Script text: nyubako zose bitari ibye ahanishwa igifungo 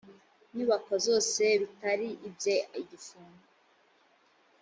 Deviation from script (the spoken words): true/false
true